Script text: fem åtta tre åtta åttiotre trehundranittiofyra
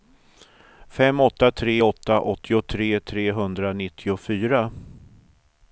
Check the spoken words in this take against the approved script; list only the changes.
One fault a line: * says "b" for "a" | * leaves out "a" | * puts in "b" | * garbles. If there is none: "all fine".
all fine